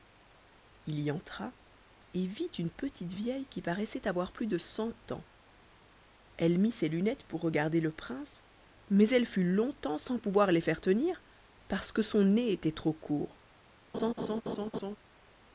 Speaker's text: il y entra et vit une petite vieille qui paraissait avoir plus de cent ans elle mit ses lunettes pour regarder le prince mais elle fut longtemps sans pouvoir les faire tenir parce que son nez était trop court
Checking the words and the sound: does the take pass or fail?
fail